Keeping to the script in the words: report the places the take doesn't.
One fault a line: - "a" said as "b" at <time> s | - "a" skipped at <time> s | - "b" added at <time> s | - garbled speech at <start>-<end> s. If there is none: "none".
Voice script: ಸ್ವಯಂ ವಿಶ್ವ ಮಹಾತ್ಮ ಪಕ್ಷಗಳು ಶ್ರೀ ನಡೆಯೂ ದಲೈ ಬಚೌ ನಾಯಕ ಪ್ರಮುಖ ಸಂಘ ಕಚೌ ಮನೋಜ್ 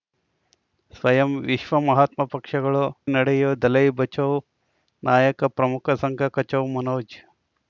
- "ಶ್ರೀ" skipped at 2.8 s